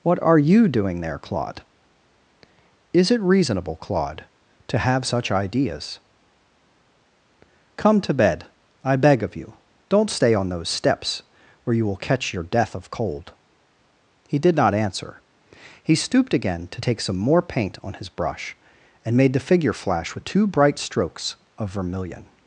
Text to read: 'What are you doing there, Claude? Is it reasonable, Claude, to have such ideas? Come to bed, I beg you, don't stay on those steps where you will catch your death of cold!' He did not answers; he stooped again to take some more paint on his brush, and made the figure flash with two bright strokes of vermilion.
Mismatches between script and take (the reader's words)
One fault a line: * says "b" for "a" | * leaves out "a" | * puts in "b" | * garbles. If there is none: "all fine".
* puts in "of"
* says "answer" for "answers"